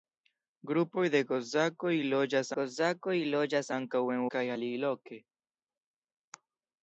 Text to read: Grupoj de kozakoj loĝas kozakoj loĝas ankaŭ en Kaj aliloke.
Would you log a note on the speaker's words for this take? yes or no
no